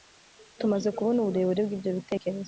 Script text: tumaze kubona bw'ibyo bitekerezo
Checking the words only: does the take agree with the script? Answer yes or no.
no